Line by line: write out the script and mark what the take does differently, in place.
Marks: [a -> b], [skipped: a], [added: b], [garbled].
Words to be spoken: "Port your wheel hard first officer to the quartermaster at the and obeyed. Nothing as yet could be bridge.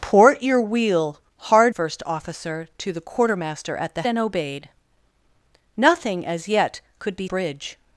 "Port your wheel hard first officer to the quartermaster at the and obeyed. Nothing as yet could be bridge.